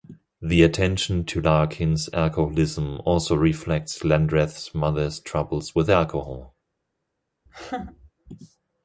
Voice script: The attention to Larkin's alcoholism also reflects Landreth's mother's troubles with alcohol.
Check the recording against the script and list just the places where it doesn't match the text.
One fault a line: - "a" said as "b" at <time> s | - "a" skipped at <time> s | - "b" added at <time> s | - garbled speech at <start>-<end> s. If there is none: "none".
none